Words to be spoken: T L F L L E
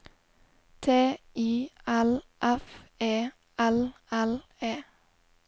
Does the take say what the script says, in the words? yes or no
no